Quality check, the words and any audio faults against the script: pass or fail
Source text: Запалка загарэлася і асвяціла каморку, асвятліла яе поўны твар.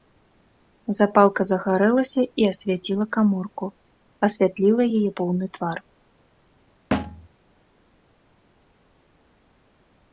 fail